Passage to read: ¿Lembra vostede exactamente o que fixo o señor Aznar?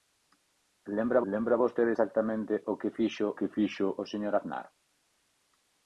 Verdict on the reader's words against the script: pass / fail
fail